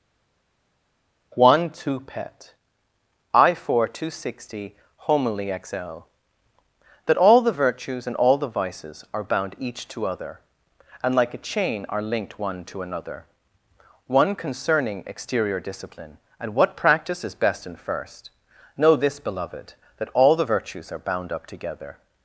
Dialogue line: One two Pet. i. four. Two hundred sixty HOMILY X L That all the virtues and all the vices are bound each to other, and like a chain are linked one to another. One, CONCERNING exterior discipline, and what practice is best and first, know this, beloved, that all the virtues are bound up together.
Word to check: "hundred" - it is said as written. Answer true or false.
false